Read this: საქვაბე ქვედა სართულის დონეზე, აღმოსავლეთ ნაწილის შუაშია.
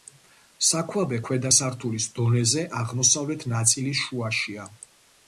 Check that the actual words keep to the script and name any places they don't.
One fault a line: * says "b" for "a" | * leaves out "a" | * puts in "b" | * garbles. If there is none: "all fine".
all fine